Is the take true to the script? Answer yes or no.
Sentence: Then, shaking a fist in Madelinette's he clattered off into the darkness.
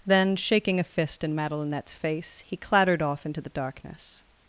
no